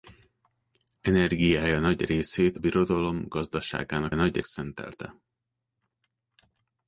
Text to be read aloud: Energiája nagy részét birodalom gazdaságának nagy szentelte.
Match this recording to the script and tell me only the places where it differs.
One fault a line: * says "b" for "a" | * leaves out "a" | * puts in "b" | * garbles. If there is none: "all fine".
all fine